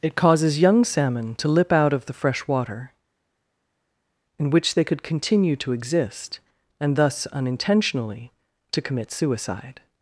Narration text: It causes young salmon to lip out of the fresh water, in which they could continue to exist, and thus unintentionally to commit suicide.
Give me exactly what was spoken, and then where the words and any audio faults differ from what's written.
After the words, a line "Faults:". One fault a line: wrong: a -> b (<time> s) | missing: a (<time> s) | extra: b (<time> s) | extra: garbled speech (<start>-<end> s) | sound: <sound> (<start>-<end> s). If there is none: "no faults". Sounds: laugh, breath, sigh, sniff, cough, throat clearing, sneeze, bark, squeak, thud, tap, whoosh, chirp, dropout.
It causes young salmon to lip out of the fresh water, in which they could continue to exist, and thus unintentionally to commit suicide.
Faults:
no faults